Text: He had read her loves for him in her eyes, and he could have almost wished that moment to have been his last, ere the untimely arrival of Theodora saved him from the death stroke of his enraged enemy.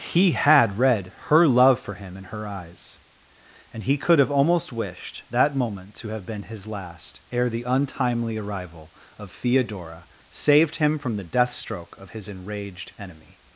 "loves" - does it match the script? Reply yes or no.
no